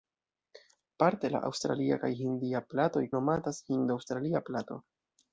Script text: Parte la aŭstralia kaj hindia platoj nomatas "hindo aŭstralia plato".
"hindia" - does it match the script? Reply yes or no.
yes